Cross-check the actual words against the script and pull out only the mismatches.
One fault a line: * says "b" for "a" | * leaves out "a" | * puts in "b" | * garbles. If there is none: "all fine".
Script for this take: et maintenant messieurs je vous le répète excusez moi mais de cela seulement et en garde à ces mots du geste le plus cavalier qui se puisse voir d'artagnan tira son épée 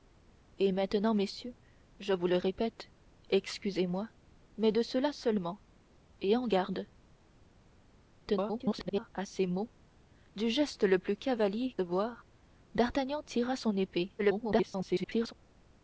* garbles
* leaves out "qui se puisse"
* garbles